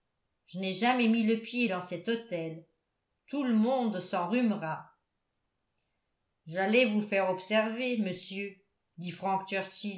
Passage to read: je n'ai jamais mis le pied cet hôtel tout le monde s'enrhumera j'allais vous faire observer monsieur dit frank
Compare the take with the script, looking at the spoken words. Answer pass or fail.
fail